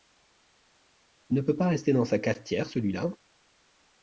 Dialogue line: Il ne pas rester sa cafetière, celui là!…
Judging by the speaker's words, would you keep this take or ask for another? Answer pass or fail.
fail